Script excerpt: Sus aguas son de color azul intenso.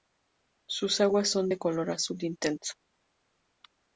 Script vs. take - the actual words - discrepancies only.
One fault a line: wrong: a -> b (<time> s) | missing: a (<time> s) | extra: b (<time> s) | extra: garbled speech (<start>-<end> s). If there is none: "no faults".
no faults